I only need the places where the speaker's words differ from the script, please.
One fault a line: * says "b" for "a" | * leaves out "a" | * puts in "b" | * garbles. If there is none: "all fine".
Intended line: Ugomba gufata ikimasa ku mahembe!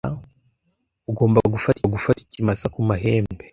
* puts in "gufata"